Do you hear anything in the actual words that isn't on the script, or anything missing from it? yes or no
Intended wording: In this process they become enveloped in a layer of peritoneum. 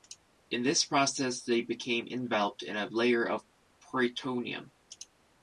no